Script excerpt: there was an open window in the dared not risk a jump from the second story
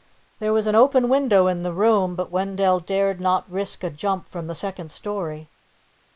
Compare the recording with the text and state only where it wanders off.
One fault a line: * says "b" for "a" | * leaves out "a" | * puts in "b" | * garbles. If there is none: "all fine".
* puts in "room but wendell"